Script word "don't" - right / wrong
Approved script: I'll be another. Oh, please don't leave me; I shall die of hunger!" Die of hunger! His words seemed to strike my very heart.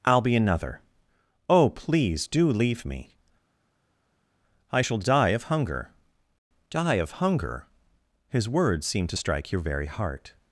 wrong